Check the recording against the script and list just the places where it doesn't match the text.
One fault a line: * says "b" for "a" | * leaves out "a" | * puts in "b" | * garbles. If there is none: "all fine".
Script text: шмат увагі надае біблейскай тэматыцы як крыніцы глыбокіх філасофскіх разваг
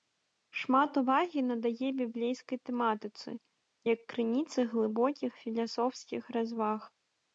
all fine